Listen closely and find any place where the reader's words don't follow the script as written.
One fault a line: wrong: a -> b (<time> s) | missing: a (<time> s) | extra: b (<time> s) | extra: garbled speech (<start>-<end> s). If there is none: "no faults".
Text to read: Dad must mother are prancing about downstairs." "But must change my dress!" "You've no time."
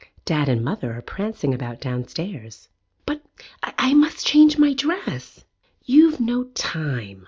wrong: must -> and (0.5 s)
extra: I (3.8 s)